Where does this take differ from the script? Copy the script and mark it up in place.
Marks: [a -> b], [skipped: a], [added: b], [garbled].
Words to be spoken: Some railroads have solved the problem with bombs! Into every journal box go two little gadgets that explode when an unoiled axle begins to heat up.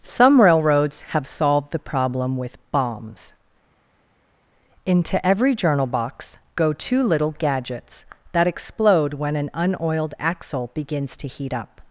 Some railroads have solved the problem with bombs! Into every journal box go two little gadgets that explode when an unoiled axle begins to heat up.